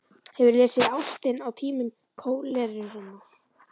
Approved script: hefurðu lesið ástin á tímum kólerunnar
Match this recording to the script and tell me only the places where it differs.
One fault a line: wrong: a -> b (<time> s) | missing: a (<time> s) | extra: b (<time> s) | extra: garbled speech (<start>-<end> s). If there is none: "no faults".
no faults